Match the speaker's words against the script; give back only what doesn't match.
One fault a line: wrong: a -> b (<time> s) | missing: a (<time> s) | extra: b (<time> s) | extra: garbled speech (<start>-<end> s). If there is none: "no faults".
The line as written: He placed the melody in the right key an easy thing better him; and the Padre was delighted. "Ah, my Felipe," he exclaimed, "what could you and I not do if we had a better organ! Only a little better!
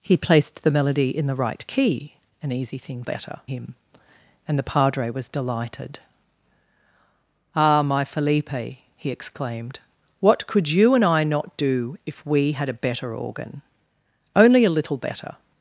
no faults